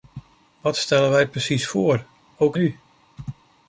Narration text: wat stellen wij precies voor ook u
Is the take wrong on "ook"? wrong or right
right